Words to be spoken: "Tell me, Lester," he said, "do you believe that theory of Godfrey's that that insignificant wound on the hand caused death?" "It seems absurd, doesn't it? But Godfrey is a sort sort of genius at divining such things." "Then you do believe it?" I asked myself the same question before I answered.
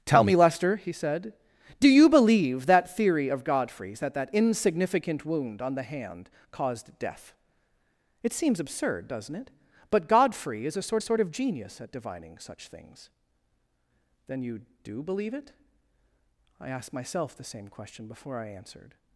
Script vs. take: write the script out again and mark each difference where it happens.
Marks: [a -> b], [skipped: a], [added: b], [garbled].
"Tell me, Lester," he said, "do you believe that theory of Godfrey's that that insignificant wound on the hand caused death?" "It seems absurd, doesn't it? But Godfrey is a sort sort of genius at divining such things." "Then you do believe it?" I asked myself the same question before I answered.